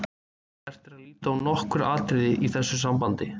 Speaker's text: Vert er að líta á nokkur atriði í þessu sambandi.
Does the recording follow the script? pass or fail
pass